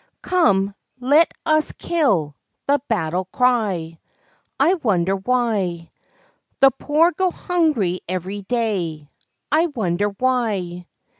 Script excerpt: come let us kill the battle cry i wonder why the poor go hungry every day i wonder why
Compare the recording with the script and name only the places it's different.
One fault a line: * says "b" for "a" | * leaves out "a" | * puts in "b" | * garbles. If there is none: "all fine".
all fine